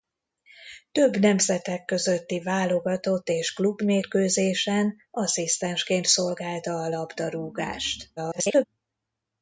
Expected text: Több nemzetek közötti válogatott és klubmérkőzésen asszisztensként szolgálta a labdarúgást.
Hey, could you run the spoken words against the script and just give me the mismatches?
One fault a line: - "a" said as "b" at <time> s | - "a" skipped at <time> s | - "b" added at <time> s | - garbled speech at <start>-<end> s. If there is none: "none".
- garbled speech at 8.2-8.6 s